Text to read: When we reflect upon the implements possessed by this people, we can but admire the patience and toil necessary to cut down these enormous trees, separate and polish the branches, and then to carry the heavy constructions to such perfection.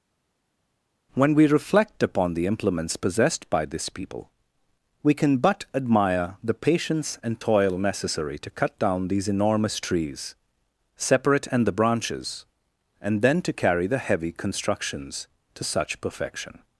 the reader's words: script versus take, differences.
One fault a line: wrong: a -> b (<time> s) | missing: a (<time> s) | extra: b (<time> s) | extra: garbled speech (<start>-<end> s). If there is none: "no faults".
missing: polish (11.7 s)